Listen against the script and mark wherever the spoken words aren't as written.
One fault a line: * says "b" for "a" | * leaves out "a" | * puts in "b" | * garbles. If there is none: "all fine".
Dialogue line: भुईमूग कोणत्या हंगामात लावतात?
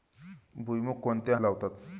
* leaves out "हंगामात"